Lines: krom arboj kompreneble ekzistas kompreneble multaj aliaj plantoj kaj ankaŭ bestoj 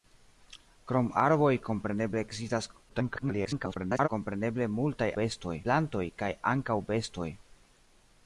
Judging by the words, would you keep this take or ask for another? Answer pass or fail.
fail